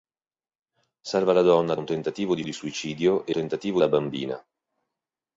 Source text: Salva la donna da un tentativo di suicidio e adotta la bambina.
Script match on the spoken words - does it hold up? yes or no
no